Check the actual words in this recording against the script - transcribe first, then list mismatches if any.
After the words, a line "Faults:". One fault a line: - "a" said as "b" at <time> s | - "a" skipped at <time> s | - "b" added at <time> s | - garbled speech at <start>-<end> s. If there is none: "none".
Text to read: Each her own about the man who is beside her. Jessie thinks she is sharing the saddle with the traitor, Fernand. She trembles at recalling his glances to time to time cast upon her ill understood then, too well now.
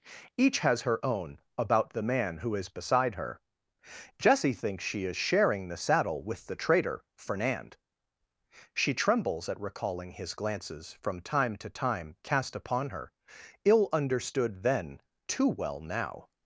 Each has her own about the man who is beside her. Jessie thinks she is sharing the saddle with the traitor, Fernand. She trembles at recalling his glances from time to time cast upon her ill understood then, too well now.
Faults:
- "has" added at 0.7 s
- "to" said as "from" at 10.9 s